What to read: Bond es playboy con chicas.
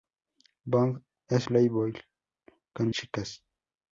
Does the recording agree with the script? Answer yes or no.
yes